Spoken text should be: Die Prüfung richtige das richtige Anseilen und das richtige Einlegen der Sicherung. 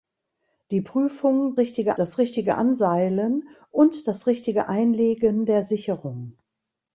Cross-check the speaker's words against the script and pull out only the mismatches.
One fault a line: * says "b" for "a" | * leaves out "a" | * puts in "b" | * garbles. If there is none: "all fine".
all fine